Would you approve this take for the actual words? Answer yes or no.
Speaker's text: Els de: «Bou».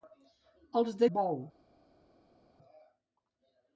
yes